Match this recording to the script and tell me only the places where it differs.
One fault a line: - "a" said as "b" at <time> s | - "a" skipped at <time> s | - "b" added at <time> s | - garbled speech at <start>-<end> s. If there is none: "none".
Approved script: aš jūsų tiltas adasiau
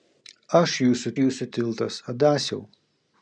- "jūsų" added at 1.2 s